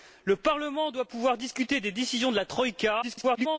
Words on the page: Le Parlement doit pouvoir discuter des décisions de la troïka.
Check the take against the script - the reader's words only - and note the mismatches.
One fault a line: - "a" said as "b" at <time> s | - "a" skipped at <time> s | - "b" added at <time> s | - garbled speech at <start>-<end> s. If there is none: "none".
- garbled speech at 3.0-3.6 s